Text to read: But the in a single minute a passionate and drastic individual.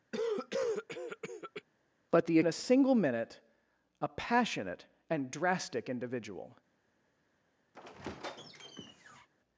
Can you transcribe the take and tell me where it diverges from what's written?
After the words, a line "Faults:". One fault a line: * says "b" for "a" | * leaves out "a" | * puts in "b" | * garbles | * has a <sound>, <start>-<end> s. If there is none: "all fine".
But the in a single minute a passionate and drastic individual.
Faults:
* has a cough, 0.1-1.6 s
* has a squeak, 7.7-9.3 s